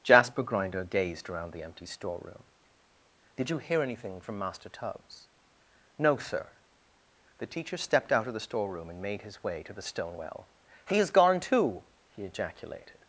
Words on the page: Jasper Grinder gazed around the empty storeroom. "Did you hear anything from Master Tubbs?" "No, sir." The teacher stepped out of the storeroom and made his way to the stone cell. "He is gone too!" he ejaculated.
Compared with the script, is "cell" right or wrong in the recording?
wrong